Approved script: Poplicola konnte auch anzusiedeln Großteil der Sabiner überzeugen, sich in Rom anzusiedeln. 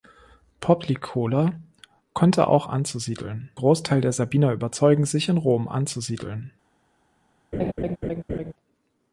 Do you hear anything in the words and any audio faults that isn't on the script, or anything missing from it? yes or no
yes